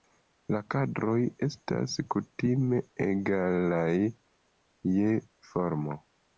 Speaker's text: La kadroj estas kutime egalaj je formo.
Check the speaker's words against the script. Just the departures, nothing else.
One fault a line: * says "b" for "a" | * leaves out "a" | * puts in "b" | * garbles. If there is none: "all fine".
all fine